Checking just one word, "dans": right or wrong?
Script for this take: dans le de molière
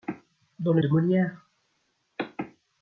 right